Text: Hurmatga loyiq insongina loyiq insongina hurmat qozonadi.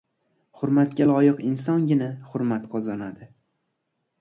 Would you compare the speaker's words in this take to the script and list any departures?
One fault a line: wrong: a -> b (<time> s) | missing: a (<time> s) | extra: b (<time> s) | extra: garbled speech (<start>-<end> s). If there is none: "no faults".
missing: loyiq insongina (2.1 s)